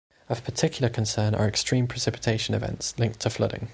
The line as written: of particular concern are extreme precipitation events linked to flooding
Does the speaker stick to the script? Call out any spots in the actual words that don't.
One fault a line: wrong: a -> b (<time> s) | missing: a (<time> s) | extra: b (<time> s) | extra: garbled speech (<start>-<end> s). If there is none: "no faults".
no faults